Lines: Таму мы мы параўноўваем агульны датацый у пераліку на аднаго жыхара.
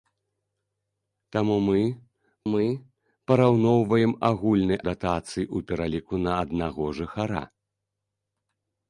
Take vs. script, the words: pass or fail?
pass